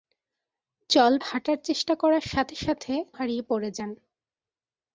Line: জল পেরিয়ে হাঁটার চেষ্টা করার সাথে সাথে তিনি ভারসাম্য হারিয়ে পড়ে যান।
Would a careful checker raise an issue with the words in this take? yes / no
yes